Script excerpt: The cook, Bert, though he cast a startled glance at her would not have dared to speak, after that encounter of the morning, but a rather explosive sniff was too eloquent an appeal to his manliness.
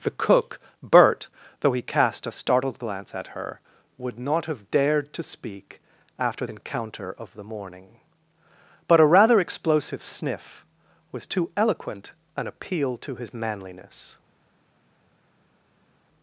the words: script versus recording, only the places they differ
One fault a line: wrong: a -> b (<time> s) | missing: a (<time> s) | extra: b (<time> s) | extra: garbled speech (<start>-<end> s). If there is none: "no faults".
missing: that (6.5 s)